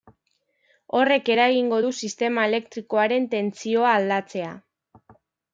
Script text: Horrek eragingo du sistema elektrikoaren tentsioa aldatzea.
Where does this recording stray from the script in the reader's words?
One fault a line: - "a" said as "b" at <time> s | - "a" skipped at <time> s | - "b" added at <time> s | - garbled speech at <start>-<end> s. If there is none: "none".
none